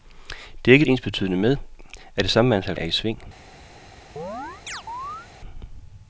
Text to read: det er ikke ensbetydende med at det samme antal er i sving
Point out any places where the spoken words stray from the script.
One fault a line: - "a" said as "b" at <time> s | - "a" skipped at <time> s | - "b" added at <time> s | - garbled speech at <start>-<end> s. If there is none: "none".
none